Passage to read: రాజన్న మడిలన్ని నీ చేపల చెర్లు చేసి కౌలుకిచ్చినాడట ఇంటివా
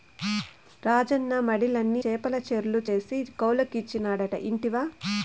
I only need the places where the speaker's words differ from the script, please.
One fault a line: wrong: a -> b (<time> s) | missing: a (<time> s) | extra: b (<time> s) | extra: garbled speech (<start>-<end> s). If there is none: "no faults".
missing: నీ (2.0 s)